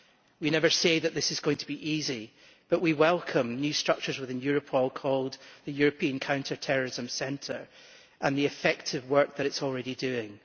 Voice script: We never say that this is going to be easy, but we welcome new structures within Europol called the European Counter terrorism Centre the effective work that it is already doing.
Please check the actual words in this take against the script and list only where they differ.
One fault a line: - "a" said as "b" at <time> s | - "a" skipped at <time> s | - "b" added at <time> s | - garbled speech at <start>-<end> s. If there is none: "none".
- "and" added at 8.2 s